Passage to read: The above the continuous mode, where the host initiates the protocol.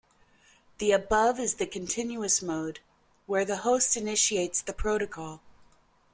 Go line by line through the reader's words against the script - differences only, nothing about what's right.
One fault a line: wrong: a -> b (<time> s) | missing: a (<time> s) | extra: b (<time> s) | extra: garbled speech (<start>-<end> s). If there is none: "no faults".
extra: is (1.4 s)